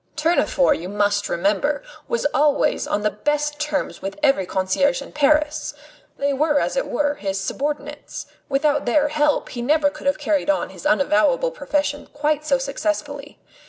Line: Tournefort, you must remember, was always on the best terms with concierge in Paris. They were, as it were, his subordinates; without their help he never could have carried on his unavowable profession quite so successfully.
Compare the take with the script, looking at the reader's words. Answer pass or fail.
fail